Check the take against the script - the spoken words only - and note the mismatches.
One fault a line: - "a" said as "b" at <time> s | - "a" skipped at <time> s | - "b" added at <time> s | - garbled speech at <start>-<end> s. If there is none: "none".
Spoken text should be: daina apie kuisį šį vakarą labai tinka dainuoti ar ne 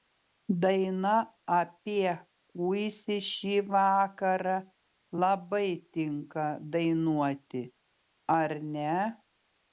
none